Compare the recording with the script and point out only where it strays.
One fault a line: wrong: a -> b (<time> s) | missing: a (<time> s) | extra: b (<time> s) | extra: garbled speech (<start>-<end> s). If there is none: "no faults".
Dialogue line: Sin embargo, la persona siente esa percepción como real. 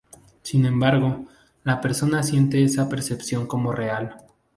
no faults